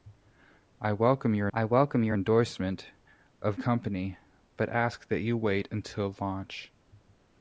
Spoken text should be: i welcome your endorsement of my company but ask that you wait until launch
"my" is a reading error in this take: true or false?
true